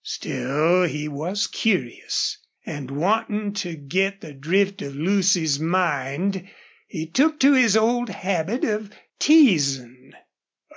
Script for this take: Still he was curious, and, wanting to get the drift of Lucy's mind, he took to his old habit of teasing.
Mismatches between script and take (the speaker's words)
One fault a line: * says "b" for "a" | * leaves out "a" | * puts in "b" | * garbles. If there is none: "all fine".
all fine